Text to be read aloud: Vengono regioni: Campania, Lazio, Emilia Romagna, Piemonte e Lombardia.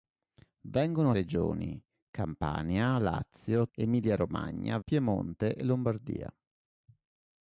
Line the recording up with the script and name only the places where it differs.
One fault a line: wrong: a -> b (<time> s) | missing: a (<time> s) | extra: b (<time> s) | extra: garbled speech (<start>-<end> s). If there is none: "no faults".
no faults